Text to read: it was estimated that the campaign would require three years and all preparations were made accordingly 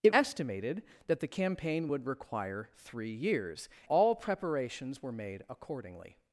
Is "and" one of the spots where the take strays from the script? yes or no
yes